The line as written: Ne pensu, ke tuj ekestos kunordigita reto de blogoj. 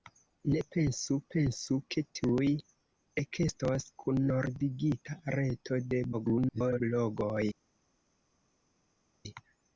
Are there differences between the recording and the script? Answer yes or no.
yes